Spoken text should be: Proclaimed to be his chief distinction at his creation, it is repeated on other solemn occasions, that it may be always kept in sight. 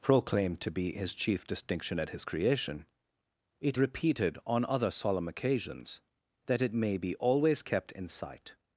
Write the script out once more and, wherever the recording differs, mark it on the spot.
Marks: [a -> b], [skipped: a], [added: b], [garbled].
Proclaimed to be his chief distinction at his creation, it [skipped: is] repeated on other solemn occasions, that it may be always kept in sight.